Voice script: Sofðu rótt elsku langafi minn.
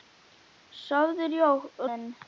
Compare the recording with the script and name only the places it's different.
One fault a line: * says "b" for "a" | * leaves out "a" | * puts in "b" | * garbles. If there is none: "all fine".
* leaves out "rótt elsku langafi"